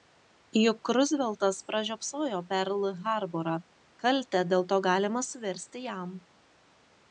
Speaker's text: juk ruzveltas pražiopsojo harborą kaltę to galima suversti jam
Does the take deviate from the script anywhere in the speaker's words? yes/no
yes